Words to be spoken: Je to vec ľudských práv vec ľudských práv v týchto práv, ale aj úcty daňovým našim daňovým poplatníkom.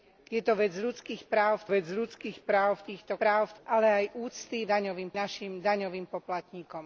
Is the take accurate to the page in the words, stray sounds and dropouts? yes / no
yes